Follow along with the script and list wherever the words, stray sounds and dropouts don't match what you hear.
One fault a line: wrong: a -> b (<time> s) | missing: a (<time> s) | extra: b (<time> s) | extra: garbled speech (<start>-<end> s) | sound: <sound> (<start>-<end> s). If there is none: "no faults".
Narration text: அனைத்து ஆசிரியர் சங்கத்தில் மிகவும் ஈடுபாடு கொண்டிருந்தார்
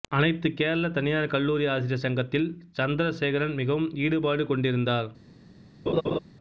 extra: கேரள தனியார் கல்லூரி (0.5 s)
extra: சந்திரசேகரன் (2.8 s)
sound: laugh (5.9-6.2 s)